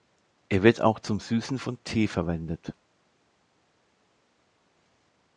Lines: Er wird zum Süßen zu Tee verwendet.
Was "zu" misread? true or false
true